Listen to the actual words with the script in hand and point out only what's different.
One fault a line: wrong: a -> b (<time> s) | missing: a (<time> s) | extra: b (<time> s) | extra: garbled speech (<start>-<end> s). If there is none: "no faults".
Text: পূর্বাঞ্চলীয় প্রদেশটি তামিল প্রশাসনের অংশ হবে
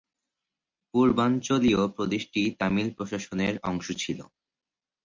wrong: হবে -> ছিল (4.0 s)